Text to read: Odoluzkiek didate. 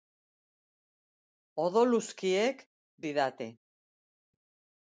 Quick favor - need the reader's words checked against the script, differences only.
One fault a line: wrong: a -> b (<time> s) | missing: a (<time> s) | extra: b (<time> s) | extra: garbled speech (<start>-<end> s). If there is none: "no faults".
no faults